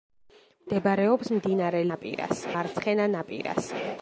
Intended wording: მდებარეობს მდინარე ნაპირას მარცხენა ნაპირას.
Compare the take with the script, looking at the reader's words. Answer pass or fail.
pass